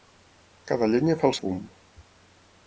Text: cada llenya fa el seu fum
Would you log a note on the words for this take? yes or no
yes